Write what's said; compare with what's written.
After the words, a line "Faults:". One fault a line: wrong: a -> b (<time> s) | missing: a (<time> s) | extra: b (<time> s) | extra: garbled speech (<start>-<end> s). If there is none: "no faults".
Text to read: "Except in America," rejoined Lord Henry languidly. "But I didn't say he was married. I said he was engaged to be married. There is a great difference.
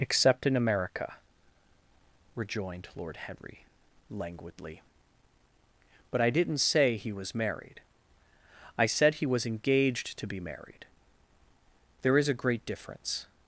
"Except in America," rejoined Lord Henry languidly. "But I didn't say he was married. I said he was engaged to be married. There is a great difference.
Faults:
no faults